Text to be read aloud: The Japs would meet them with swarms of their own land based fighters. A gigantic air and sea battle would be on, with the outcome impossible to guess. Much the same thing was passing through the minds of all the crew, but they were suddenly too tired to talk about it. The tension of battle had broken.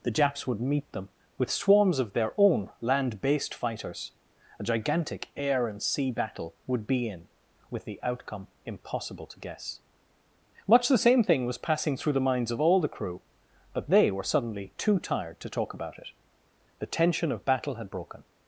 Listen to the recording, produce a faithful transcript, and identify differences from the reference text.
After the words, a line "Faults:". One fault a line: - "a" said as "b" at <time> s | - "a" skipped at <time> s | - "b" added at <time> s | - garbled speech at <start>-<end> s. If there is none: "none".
The Japs would meet them with swarms of their own land based fighters. A gigantic air and sea battle would be in, with the outcome impossible to guess. Much the same thing was passing through the minds of all the crew, but they were suddenly too tired to talk about it. The tension of battle had broken.
Faults:
- "on" said as "in" at 7.1 s